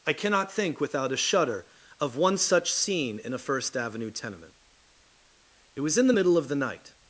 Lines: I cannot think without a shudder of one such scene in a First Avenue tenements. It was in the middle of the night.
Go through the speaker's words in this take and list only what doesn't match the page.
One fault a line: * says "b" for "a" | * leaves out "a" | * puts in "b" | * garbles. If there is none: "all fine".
* says "tenement" for "tenements"